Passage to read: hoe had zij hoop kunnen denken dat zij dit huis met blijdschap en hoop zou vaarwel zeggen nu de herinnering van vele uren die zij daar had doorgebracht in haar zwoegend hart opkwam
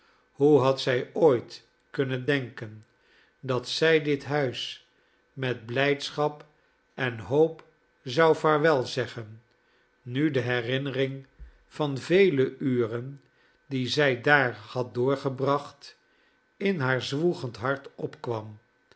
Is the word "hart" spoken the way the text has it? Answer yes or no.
yes